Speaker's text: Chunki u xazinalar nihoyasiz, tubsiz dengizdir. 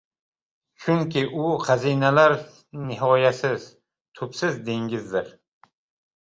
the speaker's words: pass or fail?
pass